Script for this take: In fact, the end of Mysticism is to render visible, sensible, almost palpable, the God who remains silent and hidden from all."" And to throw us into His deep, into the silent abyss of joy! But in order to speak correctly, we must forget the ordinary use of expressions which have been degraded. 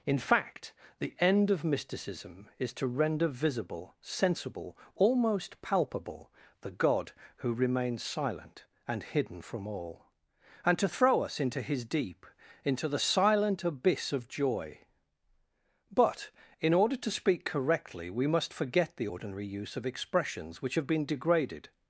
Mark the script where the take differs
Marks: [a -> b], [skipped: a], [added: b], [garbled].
In fact, the end of Mysticism is to render visible, sensible, almost palpable, the God who remains silent and hidden from all."" And to throw us into His deep, into the silent abyss of joy! But in order to speak correctly, we must forget the ordinary use of expressions which have been degraded.